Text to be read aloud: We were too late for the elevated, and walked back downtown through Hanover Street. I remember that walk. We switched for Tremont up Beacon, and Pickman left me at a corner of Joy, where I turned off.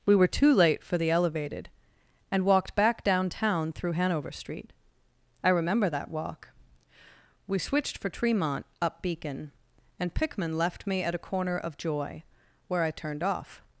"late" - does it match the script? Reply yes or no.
yes